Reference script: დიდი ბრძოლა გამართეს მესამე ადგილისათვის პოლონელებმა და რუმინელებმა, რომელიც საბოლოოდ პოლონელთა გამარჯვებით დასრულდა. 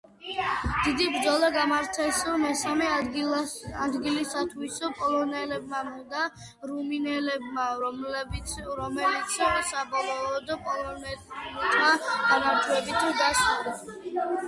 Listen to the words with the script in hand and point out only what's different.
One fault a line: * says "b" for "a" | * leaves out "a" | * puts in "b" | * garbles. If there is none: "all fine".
all fine